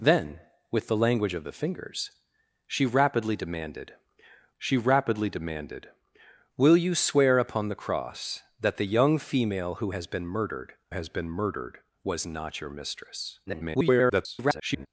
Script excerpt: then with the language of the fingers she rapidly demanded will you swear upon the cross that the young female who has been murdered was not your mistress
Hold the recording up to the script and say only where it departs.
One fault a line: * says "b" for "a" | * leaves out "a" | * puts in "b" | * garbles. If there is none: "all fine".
* puts in "she rapidly demanded"
* puts in "has been murdered"
* garbles